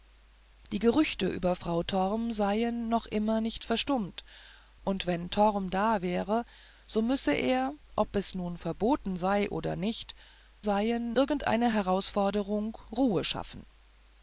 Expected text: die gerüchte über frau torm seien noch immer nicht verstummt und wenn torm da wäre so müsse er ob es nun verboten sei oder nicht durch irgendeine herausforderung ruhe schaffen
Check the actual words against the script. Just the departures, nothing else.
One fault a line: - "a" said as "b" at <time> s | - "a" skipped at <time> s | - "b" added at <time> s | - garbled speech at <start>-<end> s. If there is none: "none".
- "durch" said as "seien" at 10.6 s